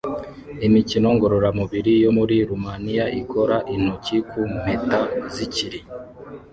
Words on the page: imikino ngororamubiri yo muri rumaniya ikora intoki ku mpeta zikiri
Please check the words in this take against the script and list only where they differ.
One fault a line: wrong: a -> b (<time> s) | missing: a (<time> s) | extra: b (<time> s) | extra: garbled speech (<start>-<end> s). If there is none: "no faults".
no faults